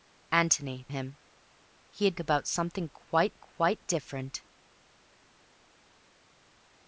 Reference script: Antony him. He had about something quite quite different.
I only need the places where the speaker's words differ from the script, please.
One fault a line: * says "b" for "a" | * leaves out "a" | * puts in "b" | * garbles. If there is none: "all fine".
all fine